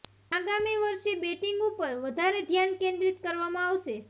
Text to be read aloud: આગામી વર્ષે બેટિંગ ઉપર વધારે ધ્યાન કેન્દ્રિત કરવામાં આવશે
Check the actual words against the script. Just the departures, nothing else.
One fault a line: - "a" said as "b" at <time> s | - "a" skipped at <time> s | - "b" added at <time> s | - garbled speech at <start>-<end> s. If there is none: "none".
none